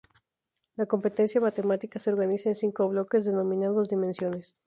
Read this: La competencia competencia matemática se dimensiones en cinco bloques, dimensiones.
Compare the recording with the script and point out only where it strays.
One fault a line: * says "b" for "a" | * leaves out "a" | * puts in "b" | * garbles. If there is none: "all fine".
* leaves out "competencia"
* says "organiza" for "dimensiones"
* puts in "denominados"